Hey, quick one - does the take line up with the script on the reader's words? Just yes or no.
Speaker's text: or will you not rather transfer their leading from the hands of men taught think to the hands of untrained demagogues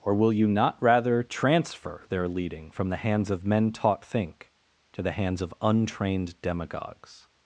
yes